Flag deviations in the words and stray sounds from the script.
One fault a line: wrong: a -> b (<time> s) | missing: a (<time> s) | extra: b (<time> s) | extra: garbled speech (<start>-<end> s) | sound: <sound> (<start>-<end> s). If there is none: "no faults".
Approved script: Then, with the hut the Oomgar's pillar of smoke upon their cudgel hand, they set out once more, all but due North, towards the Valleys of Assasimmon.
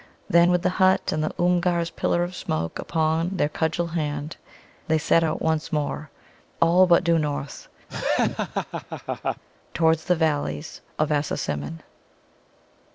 extra: and (1.1 s)
sound: laugh (7.9-9.4 s)